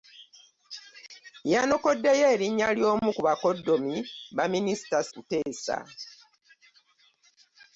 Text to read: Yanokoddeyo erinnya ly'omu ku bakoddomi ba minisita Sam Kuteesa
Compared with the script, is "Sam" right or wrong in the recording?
wrong